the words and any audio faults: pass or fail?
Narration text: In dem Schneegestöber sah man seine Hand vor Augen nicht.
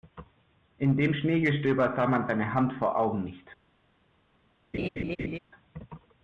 fail